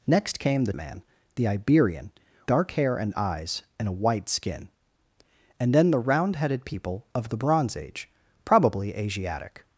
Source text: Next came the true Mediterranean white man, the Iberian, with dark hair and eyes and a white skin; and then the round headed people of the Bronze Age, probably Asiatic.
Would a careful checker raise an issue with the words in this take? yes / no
yes